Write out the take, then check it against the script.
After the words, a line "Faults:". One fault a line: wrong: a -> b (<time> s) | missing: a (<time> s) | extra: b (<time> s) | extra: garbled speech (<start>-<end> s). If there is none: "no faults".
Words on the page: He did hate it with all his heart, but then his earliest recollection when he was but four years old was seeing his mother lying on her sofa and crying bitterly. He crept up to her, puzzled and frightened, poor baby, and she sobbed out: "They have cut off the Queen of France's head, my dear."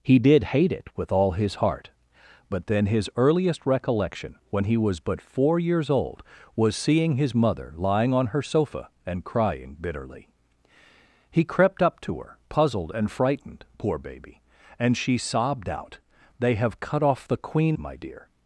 He did hate it with all his heart, but then his earliest recollection when he was but four years old was seeing his mother lying on her sofa and crying bitterly. He crept up to her, puzzled and frightened, poor baby, and she sobbed out: "They have cut off the Queen my dear."
Faults:
missing: of France's head (17.8 s)